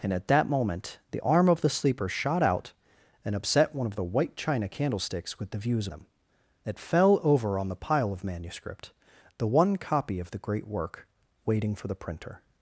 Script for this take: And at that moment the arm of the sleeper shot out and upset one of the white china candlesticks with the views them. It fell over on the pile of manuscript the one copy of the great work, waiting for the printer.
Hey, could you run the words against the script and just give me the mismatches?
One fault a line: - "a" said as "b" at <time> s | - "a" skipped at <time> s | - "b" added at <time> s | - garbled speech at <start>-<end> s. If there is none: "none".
none